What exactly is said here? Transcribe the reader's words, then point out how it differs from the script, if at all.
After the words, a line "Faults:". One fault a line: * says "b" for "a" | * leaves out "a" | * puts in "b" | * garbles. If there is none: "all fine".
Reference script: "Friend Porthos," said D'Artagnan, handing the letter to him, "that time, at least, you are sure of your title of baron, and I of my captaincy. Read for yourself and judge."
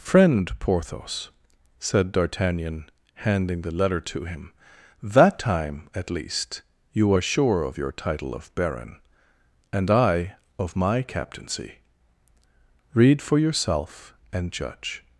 "Friend Porthos," said D'Artagnan, handing the letter to him, "that time, at least, you are sure of your title of baron, and I of my captaincy. Read for yourself and judge."
Faults:
all fine